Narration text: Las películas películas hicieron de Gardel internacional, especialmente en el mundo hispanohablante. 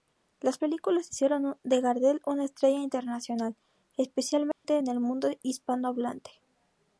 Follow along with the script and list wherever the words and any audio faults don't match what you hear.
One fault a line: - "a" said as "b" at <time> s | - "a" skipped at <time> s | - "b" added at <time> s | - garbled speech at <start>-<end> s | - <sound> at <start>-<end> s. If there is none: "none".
- "películas" skipped at 1.1 s
- "una estrella" added at 2.2 s
- dropout at 4.5-4.6 s